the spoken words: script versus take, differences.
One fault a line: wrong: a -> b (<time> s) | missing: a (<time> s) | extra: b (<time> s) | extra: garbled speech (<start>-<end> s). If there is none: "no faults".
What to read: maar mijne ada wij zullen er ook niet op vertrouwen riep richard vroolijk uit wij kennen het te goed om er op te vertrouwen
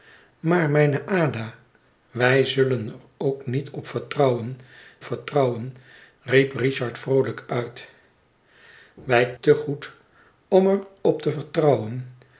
extra: vertrouwen (5.0 s)
missing: kennen het (9.3 s)